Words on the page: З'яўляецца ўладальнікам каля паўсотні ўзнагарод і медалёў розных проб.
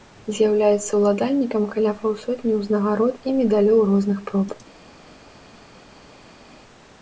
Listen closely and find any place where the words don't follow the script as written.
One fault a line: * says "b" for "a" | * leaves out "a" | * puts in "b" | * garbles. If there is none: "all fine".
all fine